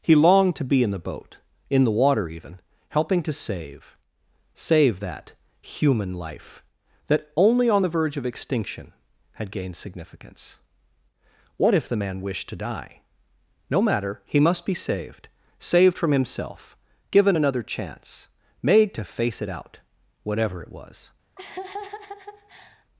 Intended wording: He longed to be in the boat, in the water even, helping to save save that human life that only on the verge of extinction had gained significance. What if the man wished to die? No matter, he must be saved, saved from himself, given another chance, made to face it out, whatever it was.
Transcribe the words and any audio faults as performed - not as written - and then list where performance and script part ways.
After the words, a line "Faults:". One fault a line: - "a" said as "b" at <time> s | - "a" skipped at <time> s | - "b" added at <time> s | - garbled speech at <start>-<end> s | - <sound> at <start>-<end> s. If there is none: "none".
He longed to be in the boat, in the water even, helping to save save that human life that only on the verge of extinction had gained significance. What if the man wished to die? No matter, he must be saved, saved from himself, given another chance, made to face it out, whatever it was.
Faults:
- laugh at 21.4-22.8 s